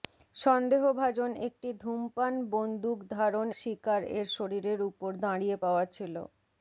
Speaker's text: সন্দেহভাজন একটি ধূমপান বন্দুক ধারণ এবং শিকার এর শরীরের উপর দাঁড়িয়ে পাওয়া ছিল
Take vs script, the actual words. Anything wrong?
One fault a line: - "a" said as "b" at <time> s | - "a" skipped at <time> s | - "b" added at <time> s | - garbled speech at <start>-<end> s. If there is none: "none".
- "এবং" skipped at 3.5 s